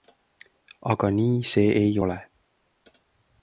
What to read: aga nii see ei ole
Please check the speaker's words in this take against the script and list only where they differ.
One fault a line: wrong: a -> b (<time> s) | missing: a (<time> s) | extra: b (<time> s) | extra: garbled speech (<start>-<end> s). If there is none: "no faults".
no faults